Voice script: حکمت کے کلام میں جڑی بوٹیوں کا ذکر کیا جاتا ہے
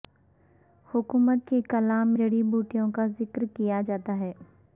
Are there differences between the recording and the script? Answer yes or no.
yes